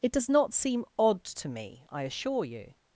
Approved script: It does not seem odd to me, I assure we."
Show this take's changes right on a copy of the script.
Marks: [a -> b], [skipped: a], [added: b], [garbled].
It does not seem odd to me, I assure [we." -> you]